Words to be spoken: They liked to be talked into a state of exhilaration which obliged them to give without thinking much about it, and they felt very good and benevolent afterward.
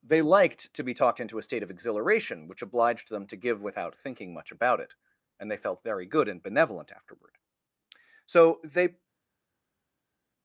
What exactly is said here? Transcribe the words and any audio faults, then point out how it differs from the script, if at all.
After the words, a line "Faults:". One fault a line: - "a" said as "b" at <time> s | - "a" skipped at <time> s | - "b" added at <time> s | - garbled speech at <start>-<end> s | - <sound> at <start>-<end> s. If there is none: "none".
They liked to be talked into a state of exhilaration which obliged them to give without thinking much about it, and they felt very good and benevolent afterward. So they
Faults:
- "So they" added at 8.2 s